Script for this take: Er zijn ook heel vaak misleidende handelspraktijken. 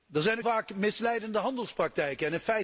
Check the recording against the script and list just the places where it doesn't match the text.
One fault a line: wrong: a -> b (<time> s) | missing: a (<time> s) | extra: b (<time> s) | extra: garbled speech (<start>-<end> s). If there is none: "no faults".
missing: heel (0.4 s)